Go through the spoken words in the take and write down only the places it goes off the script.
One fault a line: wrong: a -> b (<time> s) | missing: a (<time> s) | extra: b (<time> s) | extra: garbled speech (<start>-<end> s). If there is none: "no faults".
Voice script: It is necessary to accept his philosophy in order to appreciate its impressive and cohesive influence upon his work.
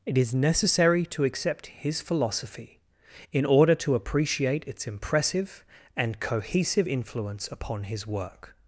no faults